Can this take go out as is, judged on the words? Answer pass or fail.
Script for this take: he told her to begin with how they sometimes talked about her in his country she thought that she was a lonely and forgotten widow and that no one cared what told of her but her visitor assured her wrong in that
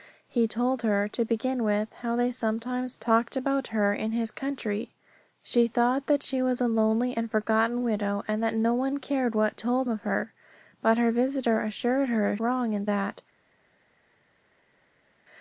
pass